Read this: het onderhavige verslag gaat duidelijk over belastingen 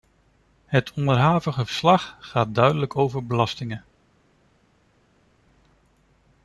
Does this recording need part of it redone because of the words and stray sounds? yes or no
no